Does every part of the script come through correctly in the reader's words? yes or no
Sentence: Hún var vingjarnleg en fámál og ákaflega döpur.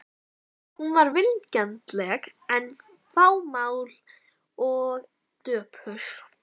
no